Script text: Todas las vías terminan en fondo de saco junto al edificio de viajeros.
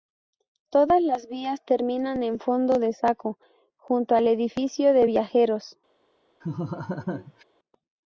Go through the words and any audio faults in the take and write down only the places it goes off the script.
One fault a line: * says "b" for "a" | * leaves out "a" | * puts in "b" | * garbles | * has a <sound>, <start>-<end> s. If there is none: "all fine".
* has a laugh, 6.4-7.4 s